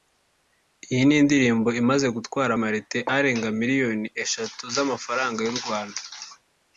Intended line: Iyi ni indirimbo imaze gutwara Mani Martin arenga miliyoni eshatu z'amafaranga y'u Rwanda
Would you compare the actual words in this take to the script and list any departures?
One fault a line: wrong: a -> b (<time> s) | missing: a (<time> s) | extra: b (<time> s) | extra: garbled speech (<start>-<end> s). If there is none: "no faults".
missing: Mani (2.5 s)